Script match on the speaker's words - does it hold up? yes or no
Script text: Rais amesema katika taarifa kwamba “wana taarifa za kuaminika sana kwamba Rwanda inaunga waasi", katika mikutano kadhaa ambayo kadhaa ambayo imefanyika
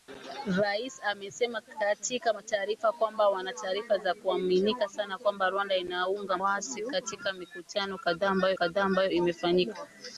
yes